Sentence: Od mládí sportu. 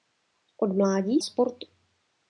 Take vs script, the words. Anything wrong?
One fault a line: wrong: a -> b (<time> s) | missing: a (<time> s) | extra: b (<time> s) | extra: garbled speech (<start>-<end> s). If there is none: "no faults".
no faults